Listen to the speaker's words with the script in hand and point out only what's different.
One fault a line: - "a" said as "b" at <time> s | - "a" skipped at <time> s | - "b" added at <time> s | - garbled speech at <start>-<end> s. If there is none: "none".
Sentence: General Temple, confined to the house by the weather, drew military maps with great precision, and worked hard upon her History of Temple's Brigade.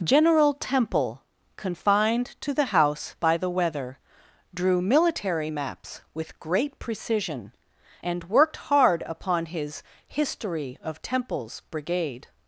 - "her" said as "his" at 9.5 s